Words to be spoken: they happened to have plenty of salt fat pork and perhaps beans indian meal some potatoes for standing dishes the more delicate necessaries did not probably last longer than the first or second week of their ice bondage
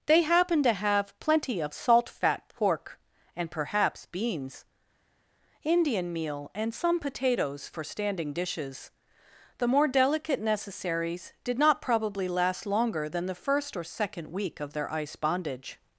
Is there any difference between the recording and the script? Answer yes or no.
yes